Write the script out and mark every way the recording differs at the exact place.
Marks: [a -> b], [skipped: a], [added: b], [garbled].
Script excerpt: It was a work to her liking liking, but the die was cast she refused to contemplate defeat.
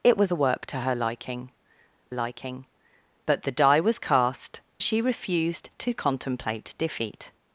It was a work to her liking liking, but the die was cast she refused to contemplate defeat.